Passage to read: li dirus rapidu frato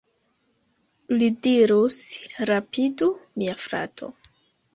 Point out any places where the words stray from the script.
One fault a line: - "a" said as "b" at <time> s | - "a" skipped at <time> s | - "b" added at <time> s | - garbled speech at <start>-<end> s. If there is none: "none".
- "mia" added at 3.4 s